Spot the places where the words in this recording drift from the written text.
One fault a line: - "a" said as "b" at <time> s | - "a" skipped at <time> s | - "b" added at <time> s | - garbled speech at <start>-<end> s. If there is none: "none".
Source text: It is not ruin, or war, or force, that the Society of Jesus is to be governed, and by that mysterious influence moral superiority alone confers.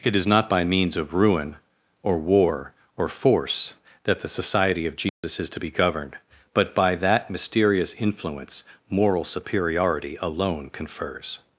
- "by means of" added at 0.5 s
- "and" said as "but" at 6.5 s